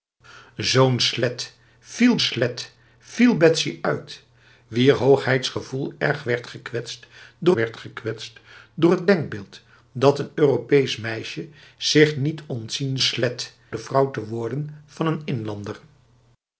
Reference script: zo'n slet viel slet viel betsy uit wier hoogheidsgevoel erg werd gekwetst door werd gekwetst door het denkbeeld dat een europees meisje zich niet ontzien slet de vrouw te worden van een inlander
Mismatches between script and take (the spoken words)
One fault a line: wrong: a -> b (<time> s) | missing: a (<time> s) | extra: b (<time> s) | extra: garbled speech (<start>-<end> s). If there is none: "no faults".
no faults